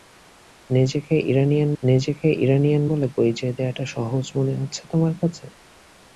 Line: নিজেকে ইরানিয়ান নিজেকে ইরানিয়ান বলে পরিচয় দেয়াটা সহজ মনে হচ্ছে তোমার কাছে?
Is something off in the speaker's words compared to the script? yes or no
no